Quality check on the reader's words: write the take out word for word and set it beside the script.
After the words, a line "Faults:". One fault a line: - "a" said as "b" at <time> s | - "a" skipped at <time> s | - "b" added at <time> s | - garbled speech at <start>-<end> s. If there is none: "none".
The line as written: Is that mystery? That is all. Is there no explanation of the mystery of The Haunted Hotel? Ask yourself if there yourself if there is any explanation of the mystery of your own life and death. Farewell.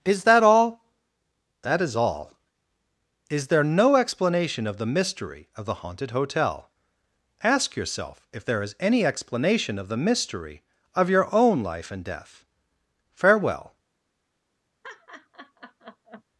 Is that all? That is all. Is there no explanation of the mystery of The Haunted Hotel? Ask yourself if there is any explanation of the mystery of your own life and death. Farewell.
Faults:
- "mystery" said as "all" at 0.4 s
- "yourself if there" skipped at 8.6 s